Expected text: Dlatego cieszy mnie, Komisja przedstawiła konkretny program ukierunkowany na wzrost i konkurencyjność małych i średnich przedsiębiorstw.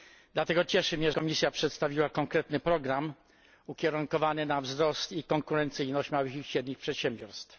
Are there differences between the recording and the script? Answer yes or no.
no